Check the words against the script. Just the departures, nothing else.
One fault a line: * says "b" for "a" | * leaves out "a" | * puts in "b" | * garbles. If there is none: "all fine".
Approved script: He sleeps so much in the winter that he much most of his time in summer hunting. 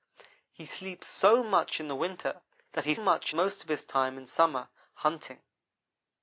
all fine